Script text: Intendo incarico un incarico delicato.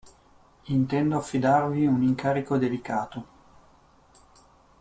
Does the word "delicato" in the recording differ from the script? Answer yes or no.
no